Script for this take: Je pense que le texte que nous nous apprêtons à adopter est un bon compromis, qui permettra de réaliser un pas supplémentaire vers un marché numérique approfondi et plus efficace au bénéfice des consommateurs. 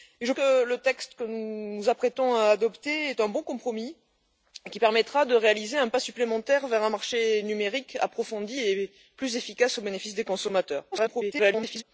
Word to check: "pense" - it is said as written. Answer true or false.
false